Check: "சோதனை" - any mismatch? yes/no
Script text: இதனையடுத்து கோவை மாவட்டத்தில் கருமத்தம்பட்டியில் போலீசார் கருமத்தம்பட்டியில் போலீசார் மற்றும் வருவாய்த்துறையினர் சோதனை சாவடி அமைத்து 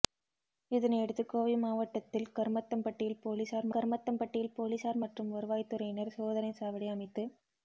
no